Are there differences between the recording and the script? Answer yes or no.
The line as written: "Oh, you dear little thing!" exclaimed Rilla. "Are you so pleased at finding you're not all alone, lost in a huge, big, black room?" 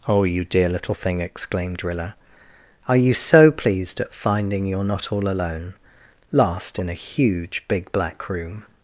yes